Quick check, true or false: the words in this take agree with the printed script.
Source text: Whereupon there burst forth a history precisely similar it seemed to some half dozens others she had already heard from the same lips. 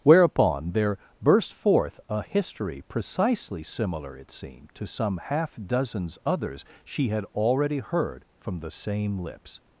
true